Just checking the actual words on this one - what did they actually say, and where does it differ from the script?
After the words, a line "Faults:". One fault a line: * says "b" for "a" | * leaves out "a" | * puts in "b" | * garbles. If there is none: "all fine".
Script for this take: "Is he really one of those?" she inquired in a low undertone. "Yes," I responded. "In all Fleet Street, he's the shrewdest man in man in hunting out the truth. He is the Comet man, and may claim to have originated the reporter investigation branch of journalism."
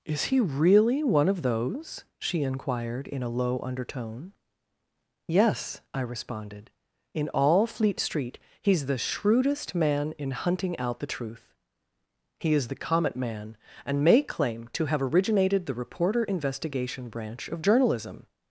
"Is he really one of those?" she inquired in a low undertone. "Yes," I responded. "In all Fleet Street, he's the shrewdest man in hunting out the truth. He is the Comet man, and may claim to have originated the reporter investigation branch of journalism."
Faults:
* leaves out "man in"